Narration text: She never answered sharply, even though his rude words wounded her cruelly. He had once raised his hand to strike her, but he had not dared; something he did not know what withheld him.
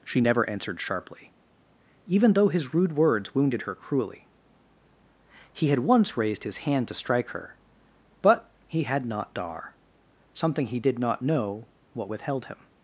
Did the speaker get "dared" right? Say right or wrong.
wrong